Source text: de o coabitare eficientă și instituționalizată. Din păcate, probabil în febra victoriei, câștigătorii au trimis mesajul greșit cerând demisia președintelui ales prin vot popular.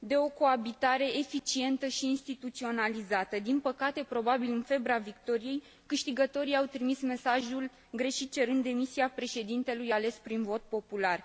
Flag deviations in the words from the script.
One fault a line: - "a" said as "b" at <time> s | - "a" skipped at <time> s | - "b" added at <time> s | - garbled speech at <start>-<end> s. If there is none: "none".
none